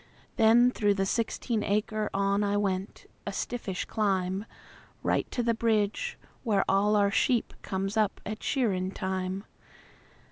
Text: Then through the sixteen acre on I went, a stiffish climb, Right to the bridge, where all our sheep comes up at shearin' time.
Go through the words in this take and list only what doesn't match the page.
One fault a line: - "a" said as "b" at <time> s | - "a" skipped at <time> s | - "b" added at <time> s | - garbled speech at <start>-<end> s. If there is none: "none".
none